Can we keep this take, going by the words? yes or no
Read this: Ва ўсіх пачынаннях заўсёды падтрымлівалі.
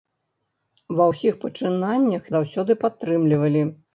yes